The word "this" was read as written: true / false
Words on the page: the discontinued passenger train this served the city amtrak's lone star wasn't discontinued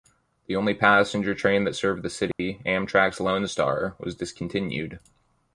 false